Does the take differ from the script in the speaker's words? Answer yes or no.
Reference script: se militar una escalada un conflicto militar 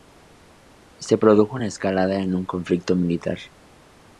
yes